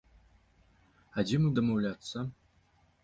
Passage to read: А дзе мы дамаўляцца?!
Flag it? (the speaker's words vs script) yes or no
no